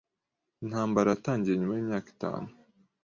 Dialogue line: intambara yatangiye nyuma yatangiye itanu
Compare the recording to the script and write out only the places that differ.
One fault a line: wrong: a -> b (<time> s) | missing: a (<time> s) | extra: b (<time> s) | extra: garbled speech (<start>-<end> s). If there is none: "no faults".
wrong: yatangiye -> yimyaka (1.8 s)